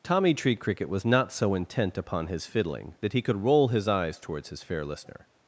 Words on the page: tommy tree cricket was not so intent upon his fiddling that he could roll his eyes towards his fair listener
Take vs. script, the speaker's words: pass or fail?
pass